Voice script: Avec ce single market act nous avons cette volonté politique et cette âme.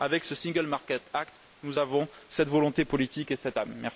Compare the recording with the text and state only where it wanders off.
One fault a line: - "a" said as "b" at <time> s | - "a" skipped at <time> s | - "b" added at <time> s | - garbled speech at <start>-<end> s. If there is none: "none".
none